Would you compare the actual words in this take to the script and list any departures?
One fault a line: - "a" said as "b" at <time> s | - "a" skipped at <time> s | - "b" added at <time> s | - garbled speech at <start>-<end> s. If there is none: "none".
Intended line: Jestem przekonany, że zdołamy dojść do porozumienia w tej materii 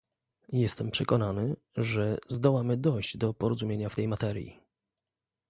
none